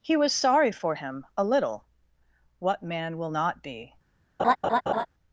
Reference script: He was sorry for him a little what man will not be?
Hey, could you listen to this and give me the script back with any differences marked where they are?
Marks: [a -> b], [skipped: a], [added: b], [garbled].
He was sorry for him a little what man will not be?